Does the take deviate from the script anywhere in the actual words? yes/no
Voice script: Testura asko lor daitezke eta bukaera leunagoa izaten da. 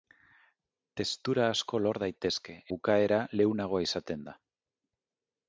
yes